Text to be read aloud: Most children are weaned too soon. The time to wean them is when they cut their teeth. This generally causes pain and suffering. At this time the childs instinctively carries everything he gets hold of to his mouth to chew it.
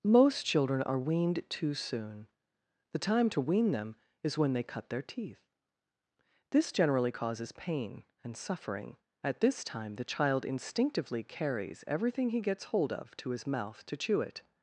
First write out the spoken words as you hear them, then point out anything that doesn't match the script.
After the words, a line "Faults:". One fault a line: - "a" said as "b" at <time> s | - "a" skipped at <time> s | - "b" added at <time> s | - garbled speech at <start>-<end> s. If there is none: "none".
Most children are weaned too soon. The time to wean them is when they cut their teeth. This generally causes pain and suffering. At this time the child instinctively carries everything he gets hold of to his mouth to chew it.
Faults:
- "childs" said as "child" at 10.0 s